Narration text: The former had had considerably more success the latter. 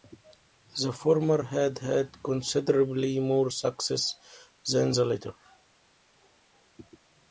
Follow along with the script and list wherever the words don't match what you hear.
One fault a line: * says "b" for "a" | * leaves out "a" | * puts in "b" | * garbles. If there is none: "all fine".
* puts in "than"